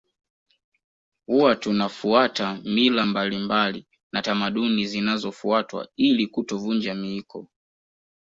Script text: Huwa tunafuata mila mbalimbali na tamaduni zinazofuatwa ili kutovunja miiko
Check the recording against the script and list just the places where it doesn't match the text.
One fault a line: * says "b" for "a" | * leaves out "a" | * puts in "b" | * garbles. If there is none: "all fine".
all fine